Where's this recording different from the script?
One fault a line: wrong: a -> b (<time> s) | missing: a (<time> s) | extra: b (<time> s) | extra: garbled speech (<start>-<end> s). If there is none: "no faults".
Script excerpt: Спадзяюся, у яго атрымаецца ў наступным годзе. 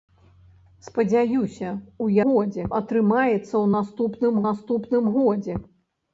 wrong: яго -> годзе (2.3 s)
extra: наступным (4.5 s)